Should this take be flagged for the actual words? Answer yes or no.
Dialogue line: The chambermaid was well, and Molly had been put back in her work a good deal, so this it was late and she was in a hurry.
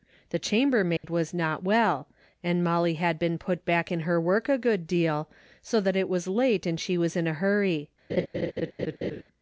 yes